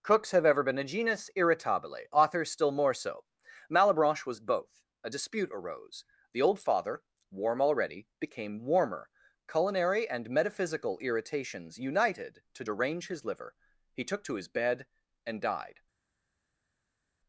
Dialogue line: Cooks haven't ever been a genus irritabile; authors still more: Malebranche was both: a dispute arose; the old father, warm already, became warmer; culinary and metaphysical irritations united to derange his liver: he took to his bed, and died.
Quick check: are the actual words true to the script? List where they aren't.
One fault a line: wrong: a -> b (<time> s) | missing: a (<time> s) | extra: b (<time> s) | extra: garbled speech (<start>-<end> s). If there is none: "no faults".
wrong: haven't -> have (0.3 s)
extra: so (3.0 s)